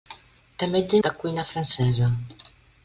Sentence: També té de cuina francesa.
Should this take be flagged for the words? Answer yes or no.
no